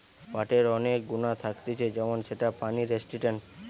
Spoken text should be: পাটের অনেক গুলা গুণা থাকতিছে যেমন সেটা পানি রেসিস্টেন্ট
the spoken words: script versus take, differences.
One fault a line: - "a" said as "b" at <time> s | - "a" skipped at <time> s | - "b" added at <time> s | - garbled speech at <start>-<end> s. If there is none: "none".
- "গুলা" skipped at 1.0 s